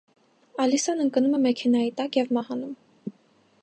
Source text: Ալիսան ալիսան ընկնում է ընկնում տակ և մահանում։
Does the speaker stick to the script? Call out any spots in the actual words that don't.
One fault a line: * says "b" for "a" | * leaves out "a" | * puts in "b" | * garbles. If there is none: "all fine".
* leaves out "ալիսան"
* says "մեքենայի" for "ընկնում"